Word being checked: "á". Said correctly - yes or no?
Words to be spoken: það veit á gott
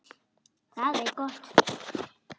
yes